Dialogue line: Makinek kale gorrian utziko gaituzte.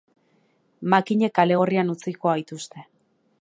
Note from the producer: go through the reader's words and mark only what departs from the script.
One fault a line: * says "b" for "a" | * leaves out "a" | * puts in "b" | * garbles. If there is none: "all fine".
all fine